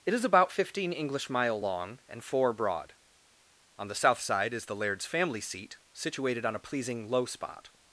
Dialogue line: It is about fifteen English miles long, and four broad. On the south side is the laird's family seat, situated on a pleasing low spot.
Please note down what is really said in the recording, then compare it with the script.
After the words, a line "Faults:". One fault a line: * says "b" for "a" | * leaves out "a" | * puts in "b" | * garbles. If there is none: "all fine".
It is about fifteen English mile long, and four broad. On the south side is the laird's family seat, situated on a pleasing low spot.
Faults:
* says "mile" for "miles"